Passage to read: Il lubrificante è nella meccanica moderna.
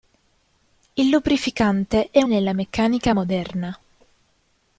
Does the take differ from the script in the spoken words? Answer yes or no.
no